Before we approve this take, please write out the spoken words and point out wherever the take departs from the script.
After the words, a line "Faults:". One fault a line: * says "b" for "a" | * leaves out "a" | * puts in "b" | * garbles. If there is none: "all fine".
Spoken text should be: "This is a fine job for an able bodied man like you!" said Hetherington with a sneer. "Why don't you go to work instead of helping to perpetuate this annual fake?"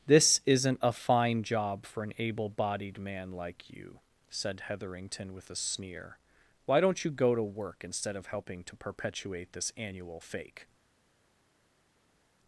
"This isn't a fine job for an able bodied man like you!" said Hetherington with a sneer. "Why don't you go to work instead of helping to perpetuate this annual fake?"
Faults:
* says "isn't" for "is"